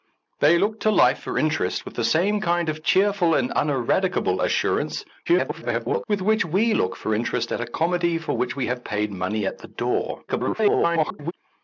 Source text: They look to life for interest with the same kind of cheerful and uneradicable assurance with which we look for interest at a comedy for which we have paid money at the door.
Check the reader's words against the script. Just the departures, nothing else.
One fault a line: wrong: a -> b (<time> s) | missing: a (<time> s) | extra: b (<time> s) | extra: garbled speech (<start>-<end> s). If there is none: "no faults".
extra: garbled speech (5.3-6.0 s)
extra: garbled speech (10.3-11.3 s)